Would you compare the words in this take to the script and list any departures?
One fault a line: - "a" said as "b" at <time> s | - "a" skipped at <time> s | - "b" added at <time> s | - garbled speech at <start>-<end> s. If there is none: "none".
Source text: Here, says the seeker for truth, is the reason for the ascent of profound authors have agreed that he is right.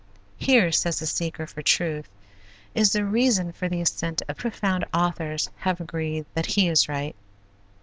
none